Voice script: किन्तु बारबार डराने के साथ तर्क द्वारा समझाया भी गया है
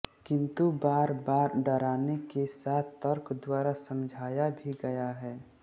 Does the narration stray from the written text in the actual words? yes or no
no